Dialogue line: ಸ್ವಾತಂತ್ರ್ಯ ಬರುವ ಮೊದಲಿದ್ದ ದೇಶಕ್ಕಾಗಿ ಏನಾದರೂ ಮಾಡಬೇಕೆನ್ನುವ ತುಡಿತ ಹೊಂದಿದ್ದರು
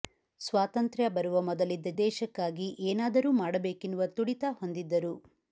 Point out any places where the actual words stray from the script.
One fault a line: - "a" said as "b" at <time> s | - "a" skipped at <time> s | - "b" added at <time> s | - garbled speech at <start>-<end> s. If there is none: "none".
none